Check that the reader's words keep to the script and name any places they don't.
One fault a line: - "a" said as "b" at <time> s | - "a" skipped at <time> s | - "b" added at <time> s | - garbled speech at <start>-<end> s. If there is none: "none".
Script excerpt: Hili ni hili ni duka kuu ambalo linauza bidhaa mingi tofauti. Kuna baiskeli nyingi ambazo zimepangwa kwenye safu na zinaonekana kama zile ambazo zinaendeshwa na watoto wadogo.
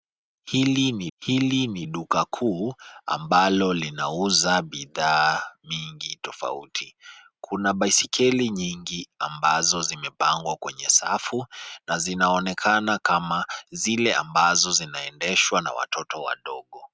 none